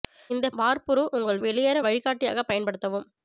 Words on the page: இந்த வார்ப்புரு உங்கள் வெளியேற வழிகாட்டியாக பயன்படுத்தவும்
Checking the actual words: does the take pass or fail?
pass